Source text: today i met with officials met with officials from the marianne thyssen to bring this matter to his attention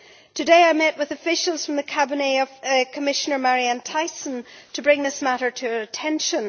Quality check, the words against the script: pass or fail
fail